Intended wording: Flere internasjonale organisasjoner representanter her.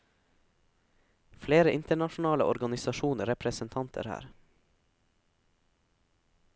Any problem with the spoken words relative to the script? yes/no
no